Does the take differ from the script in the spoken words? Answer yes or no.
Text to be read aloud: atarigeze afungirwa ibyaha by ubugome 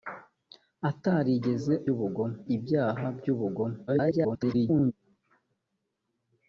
yes